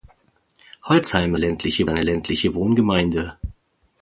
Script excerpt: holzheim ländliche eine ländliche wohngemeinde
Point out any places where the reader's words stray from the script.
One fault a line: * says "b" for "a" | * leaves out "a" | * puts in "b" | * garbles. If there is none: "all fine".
all fine